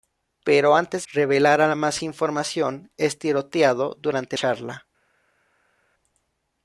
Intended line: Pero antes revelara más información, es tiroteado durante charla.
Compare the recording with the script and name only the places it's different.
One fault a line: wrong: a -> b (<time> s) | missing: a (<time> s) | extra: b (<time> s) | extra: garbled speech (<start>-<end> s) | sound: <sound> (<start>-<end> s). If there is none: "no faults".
no faults